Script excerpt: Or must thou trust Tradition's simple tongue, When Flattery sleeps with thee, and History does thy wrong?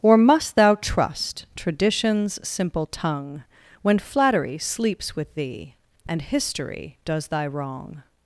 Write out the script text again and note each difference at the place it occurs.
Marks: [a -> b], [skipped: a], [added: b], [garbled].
Or must thou trust Tradition's simple tongue, When Flattery sleeps with thee, and History does thy wrong?